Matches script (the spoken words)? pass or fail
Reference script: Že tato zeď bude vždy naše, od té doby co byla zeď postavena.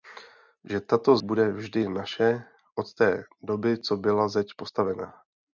fail